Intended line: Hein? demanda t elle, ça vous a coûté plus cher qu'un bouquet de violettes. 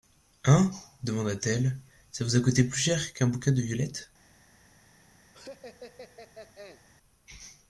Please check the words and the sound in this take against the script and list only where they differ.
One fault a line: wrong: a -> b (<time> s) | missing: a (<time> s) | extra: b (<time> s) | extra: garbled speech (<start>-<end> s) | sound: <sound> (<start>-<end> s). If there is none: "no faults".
sound: laugh (5.3-6.8 s)